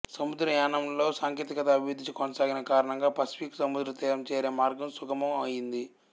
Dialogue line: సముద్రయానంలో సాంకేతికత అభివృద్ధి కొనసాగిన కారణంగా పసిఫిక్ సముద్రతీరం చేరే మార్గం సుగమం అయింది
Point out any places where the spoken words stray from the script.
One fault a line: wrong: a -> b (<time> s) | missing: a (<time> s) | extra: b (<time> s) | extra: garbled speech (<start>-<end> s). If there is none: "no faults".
no faults